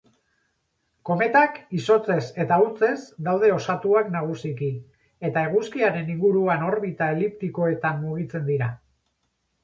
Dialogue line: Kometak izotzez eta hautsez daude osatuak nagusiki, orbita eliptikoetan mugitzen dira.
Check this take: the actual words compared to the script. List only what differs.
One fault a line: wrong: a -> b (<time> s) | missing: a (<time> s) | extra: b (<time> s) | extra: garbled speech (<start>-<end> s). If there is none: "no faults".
extra: eta eguzkiaren inguruan (5.3 s)